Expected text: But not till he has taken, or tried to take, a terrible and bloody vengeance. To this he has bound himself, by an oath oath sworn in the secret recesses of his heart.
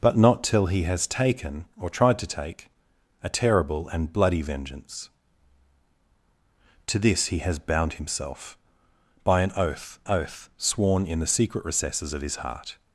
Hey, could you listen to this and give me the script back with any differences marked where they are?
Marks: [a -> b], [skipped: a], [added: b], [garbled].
But not till he has taken, or tried to take, a terrible and bloody vengeance. To this he has bound himself, by an oath oath sworn in the secret recesses of his heart.